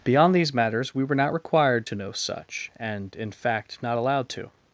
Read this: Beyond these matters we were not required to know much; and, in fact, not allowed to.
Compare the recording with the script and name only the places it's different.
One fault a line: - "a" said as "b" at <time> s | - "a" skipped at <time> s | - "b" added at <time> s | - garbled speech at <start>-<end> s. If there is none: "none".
- "much" said as "such" at 2.1 s